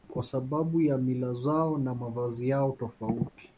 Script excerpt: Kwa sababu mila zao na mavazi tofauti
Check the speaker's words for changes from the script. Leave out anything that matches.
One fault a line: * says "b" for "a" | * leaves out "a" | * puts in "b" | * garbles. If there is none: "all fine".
* puts in "ya"
* puts in "yao"